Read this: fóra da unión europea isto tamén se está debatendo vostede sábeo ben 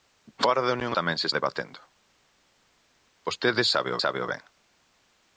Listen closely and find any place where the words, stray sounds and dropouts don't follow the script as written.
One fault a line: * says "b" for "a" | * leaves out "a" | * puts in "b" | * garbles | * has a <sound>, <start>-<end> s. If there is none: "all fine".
* leaves out "europea isto"
* leaves out "está"
* puts in "sábeo"